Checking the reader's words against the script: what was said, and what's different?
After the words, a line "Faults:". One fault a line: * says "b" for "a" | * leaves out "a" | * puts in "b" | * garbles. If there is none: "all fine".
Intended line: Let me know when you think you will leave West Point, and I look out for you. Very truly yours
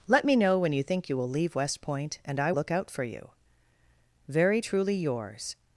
Let me know when you think you will leave West Point, and I look out for you. Very truly yours
Faults:
all fine